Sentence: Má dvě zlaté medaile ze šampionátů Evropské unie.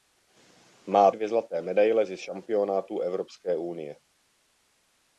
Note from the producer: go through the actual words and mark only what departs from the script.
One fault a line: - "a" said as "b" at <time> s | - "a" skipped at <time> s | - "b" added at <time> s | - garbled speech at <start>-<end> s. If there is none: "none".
none